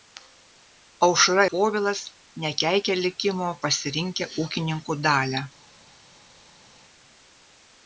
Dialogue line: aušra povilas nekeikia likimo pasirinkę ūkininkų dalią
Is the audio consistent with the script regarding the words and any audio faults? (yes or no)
yes